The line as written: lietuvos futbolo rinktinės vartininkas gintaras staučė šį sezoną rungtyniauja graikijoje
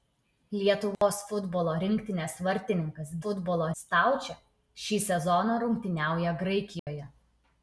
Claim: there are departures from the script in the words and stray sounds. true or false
true